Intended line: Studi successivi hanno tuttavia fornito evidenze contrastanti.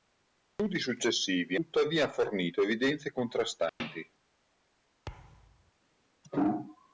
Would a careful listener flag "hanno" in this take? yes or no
yes